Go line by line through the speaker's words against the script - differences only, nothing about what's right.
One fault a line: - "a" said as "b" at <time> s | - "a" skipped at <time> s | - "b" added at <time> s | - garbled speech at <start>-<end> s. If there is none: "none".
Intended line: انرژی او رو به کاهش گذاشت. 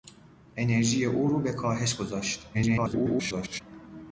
- garbled speech at 2.5-3.6 s